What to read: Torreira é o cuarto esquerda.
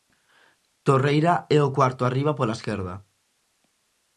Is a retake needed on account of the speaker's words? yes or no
yes